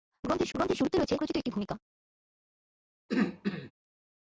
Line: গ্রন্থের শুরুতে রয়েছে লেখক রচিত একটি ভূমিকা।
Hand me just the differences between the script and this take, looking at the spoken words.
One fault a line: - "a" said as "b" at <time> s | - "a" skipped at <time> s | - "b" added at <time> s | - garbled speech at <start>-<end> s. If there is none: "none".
- "গ্রন্থের" added at 0.5 s
- "লেখক" skipped at 1.2 s